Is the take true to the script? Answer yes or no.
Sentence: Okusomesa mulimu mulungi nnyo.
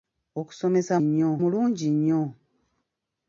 no